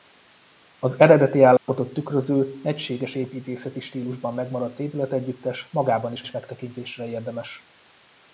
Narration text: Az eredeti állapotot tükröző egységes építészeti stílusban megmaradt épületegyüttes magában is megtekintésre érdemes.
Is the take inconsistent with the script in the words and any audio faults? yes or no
yes